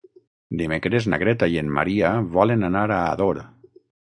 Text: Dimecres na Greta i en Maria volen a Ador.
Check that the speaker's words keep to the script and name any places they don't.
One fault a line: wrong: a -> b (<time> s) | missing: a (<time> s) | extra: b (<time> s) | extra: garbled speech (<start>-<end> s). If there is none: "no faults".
extra: anar (2.7 s)